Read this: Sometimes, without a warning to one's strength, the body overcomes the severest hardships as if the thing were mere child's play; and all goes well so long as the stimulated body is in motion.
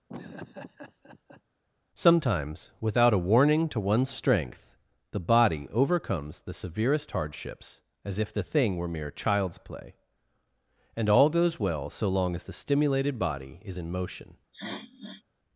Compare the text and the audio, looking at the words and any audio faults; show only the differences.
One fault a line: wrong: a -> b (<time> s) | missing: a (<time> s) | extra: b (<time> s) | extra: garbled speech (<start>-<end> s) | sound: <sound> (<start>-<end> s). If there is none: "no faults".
sound: laugh (0.1-1.4 s)
sound: sniff (14.5-15.2 s)